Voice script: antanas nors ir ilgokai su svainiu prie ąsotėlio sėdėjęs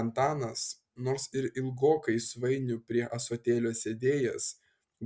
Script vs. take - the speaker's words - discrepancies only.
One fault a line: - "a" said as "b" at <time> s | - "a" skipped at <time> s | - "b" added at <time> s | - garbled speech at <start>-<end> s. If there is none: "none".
- "su" skipped at 2.2 s